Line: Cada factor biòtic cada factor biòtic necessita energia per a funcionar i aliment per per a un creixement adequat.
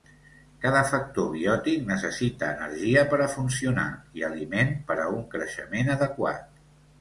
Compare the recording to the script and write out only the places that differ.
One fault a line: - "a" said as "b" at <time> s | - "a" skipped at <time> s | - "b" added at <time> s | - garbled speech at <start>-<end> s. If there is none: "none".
- "cada factor biòtic" skipped at 1.8 s
- "per" skipped at 5.0 s